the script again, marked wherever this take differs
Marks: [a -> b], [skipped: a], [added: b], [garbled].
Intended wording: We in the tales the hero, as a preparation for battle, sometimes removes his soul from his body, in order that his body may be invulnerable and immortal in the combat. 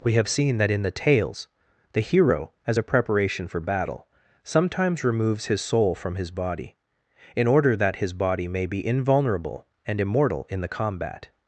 We [added: have seen that] in the tales the hero, as a preparation for battle, sometimes removes his soul from his body, in order that his body may be invulnerable and immortal in the combat.